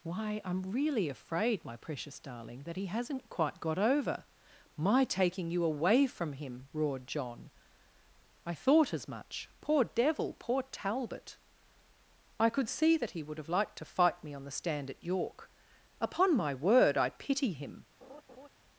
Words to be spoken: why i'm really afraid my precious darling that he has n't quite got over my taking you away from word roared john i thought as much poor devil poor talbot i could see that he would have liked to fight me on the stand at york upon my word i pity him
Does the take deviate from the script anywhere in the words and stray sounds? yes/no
yes